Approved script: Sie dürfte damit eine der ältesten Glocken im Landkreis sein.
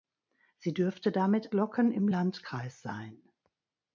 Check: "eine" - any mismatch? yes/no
yes